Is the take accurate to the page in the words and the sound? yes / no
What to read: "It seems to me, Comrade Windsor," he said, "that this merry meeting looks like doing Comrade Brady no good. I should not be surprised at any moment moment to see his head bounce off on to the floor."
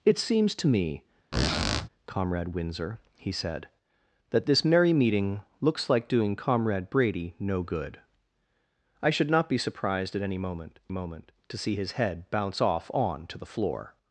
no